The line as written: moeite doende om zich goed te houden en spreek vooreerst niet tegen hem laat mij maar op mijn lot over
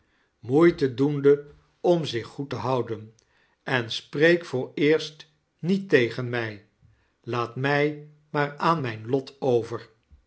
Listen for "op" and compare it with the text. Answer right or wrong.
wrong